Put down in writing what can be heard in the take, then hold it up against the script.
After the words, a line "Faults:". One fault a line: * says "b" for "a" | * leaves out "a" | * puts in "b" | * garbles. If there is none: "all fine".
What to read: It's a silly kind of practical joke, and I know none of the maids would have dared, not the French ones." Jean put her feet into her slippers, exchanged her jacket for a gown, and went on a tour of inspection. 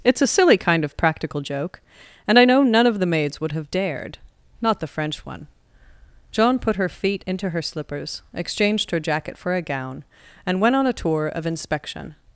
It's a silly kind of practical joke, and I know none of the maids would have dared, not the French one." Jean put her feet into her slippers, exchanged her jacket for a gown, and went on a tour of inspection.
Faults:
* says "one" for "ones"